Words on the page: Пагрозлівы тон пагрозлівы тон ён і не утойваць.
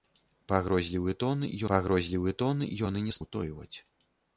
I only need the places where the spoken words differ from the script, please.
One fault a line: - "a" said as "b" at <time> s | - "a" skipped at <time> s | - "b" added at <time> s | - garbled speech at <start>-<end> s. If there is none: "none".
none